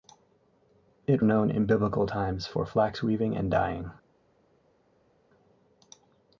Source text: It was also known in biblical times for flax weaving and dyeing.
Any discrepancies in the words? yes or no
yes